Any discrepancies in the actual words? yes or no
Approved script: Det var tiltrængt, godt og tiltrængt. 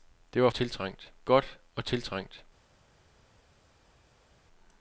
no